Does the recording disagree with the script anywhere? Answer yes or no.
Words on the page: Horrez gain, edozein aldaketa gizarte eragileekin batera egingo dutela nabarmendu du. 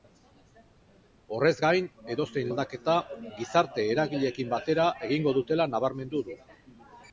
no